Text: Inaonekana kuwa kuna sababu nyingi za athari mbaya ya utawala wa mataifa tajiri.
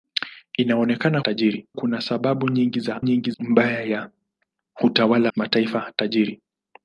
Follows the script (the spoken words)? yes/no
no